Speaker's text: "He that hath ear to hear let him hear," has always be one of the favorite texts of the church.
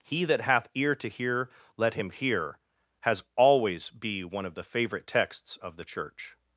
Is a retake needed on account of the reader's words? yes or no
no